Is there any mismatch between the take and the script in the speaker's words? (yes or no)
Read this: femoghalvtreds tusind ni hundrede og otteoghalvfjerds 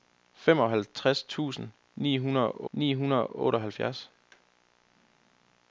yes